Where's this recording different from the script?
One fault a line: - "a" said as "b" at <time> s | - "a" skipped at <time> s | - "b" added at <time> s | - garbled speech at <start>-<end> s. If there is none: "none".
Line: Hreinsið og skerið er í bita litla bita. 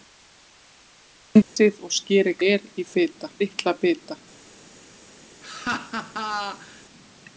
none